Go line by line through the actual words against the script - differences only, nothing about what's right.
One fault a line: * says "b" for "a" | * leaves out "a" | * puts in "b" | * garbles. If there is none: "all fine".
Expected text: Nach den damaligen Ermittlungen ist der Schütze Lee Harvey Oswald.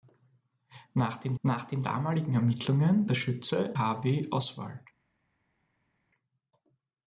* puts in "nach den"
* leaves out "ist"
* leaves out "Lee"